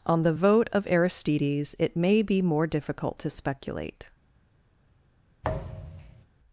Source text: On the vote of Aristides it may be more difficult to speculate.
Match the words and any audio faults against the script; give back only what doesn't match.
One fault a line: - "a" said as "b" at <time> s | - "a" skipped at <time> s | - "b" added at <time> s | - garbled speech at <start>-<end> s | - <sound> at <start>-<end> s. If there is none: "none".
- thud at 5.4-6.3 s